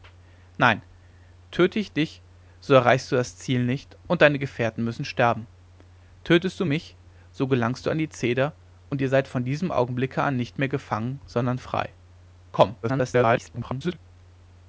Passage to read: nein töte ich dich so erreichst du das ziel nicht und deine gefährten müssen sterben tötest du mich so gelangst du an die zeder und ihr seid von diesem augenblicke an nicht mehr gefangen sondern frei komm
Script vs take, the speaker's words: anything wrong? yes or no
yes